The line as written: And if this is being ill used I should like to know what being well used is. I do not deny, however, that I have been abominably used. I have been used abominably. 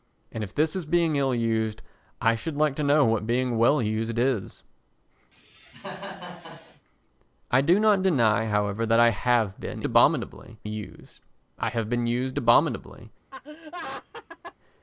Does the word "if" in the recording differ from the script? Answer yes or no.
no